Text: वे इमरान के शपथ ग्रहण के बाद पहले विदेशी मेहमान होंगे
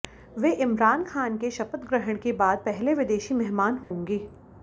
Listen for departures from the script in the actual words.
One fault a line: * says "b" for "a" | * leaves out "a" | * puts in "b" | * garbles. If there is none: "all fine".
* puts in "खान"